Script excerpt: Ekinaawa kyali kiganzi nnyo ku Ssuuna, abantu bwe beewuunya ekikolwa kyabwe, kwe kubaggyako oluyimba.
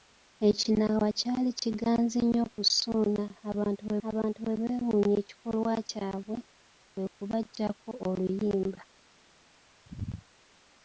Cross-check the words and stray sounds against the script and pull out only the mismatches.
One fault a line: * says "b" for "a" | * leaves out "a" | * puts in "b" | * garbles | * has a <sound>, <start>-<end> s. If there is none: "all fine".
* puts in "abantu bwe"